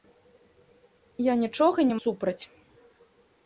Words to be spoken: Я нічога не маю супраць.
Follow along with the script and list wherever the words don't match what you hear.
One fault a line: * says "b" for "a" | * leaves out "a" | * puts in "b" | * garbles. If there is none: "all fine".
* leaves out "маю"